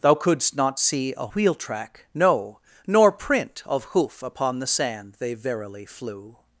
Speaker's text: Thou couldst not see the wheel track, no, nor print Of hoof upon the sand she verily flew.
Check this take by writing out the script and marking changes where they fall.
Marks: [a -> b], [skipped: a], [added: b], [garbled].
Thou couldst not see [the -> a] wheel track, no, nor print Of hoof upon the sand [she -> they] verily flew.